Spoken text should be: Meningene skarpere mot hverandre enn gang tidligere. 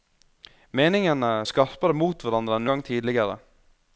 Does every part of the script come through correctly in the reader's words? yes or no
yes